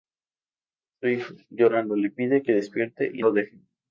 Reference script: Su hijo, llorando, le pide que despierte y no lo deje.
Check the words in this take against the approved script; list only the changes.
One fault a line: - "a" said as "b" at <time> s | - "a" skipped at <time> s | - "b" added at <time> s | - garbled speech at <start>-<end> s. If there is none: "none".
- "no" skipped at 3.2 s